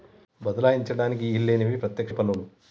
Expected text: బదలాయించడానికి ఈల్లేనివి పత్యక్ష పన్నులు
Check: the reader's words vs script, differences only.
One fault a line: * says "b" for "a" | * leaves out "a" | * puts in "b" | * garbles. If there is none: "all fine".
all fine